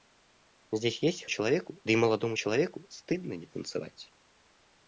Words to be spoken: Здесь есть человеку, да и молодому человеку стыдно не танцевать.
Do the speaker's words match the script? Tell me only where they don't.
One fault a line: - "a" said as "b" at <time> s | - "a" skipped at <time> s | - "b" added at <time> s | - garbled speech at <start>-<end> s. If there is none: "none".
none